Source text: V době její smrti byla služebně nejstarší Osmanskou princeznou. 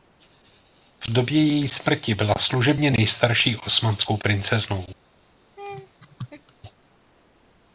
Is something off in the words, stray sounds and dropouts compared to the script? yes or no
yes